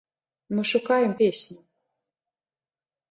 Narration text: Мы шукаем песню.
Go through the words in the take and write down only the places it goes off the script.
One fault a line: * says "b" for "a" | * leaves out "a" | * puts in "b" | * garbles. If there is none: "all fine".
all fine